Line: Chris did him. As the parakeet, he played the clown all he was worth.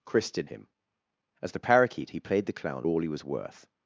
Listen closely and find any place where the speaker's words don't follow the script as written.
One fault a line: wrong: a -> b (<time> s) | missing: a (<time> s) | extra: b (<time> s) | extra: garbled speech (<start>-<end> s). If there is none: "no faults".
no faults